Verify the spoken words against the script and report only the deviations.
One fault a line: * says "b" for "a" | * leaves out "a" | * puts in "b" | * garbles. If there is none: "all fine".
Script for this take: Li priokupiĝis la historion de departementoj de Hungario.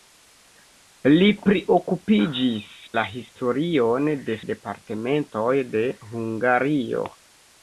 all fine